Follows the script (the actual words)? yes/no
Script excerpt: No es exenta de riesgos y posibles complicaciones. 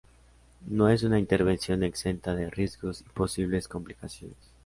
no